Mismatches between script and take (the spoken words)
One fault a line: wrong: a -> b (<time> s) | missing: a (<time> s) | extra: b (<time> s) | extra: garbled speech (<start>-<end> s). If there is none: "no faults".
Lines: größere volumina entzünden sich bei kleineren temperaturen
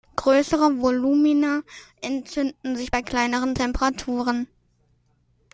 no faults